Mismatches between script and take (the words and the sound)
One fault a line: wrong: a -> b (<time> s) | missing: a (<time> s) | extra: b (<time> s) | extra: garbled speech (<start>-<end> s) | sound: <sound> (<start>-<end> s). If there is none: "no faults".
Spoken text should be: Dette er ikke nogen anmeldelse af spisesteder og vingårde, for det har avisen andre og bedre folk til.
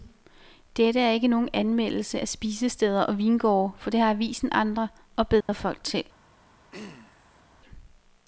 sound: dropout (5.4-5.5 s)
sound: throat clearing (6.7-7.4 s)